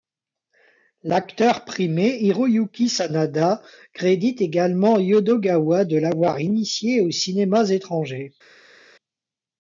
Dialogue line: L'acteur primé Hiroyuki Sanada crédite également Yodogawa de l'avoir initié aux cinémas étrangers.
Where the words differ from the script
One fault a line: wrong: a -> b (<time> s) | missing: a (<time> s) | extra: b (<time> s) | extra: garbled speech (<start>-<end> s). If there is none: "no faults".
no faults